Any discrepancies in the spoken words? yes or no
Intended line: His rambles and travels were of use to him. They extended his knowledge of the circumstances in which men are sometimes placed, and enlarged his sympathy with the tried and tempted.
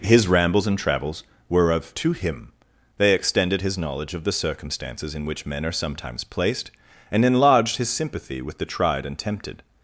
yes